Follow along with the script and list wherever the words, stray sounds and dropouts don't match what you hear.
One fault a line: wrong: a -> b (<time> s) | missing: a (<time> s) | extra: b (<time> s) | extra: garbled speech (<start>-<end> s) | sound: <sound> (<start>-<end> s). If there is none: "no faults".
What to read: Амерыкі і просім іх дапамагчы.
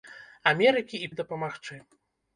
missing: просім (1.1 s)